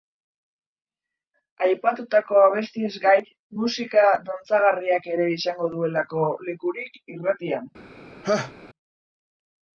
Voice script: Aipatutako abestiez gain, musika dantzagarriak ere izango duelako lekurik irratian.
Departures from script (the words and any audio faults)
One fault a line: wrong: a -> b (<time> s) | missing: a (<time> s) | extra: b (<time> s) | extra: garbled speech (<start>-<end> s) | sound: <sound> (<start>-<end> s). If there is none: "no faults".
sound: laugh (8.2-8.5 s)